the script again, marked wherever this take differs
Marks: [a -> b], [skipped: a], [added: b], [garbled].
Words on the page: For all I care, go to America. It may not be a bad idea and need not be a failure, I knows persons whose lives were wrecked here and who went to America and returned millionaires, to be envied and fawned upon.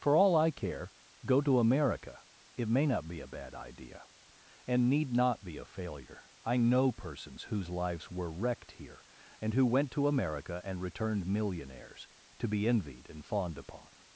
For all I care, go to America. It may not be a bad idea and need not be a failure, I [knows -> know] persons whose lives were wrecked here and who went to America and returned millionaires, to be envied and fawned upon.